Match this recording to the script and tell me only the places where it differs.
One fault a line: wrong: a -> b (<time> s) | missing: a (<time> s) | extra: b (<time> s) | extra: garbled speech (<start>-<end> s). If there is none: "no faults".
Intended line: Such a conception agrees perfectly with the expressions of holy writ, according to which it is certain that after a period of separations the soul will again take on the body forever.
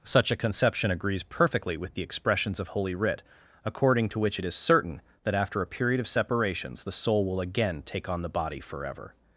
no faults